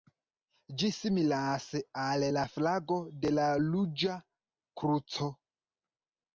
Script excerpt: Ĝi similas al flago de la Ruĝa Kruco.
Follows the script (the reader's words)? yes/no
no